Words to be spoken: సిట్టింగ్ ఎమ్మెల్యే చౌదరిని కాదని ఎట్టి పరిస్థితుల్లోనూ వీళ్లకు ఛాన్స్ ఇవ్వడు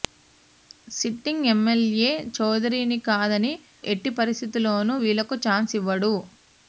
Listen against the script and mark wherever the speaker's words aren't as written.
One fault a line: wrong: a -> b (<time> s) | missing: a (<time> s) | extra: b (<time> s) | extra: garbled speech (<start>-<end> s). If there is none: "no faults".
no faults